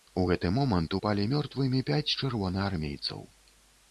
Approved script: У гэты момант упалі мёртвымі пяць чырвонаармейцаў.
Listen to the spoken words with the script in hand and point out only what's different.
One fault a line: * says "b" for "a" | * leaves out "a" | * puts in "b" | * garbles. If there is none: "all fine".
all fine